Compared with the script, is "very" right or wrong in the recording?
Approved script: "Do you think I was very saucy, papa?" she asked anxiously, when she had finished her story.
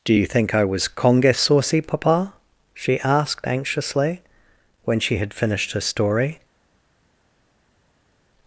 wrong